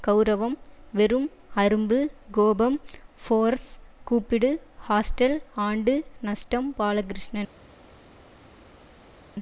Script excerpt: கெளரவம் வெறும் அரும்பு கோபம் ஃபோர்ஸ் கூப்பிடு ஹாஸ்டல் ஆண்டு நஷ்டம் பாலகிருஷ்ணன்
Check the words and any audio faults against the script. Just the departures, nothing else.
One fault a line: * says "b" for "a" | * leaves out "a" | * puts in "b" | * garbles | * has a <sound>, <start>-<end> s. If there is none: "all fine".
all fine